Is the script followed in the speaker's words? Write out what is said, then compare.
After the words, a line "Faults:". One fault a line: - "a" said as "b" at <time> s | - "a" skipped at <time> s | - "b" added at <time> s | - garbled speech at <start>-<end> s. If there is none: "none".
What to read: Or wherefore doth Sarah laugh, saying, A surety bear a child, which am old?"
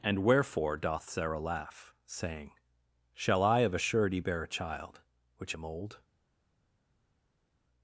And wherefore doth Sarah laugh, saying, Shall I of a surety bear a child, which am old?"
Faults:
- "Or" said as "And" at 0.0 s
- "Shall I of" added at 3.1 s